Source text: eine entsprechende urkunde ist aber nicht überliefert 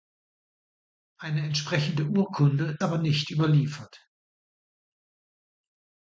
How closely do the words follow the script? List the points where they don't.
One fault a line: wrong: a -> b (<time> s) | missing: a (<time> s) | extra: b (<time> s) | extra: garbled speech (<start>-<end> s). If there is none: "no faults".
missing: ist (2.8 s)